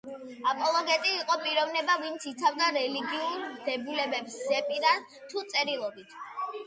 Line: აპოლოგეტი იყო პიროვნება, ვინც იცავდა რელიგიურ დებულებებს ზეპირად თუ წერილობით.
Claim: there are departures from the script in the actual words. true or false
false